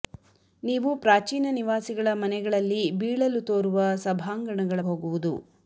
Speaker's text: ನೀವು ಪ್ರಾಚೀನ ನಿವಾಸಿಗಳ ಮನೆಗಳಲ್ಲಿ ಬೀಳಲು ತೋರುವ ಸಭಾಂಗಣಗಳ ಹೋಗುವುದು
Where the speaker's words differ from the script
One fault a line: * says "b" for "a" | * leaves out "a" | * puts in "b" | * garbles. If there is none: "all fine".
all fine